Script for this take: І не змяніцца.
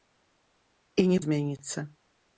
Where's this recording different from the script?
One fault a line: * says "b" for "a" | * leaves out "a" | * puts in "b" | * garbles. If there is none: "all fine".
all fine